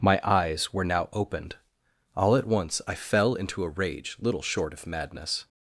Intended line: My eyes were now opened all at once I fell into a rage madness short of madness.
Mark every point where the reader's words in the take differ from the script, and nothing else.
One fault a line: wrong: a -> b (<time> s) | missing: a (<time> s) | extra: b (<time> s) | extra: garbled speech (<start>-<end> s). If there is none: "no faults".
wrong: madness -> little (4.2 s)